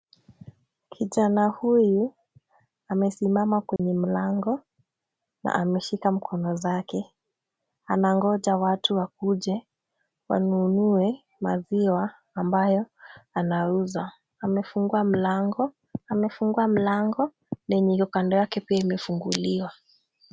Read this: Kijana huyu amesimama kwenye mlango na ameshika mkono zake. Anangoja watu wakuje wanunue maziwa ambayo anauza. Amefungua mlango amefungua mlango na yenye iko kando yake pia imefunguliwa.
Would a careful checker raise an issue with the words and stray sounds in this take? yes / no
yes